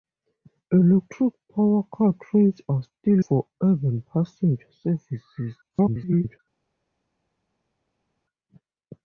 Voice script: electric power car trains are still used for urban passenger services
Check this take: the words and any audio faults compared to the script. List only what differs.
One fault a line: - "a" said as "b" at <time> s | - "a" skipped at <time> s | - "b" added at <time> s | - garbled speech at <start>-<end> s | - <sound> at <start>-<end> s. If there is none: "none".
- "used" skipped at 3.2 s
- garbled speech at 5.6-6.4 s